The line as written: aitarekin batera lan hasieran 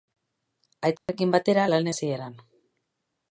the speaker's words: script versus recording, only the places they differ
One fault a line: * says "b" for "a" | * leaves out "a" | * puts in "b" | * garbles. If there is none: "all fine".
all fine